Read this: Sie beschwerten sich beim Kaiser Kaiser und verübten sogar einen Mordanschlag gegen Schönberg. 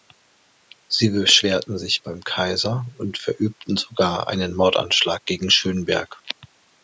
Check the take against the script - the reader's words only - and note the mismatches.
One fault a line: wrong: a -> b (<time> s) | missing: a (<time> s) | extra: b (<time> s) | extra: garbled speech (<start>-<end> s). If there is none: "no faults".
missing: Kaiser (2.9 s)